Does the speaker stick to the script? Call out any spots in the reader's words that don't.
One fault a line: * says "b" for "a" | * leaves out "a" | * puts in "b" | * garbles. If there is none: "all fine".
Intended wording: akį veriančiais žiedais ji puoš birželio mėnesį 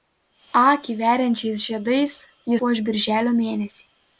all fine